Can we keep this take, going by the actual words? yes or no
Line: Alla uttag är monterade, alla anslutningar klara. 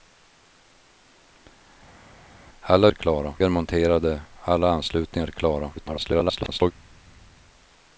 no